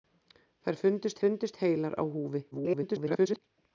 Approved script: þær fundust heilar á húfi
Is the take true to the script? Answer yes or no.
no